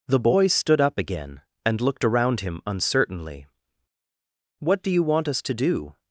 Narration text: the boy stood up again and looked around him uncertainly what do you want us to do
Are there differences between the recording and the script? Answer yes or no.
no